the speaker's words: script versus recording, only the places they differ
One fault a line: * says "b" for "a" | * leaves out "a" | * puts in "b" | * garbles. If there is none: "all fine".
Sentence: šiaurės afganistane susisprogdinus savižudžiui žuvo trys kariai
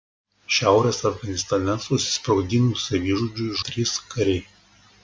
* leaves out "žuvo"